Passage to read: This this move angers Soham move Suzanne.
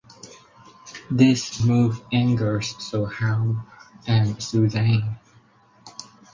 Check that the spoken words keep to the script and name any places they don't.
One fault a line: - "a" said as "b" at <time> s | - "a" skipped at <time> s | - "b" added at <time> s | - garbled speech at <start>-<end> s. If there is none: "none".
- "this" skipped at 1.6 s
- "move" said as "and" at 4.0 s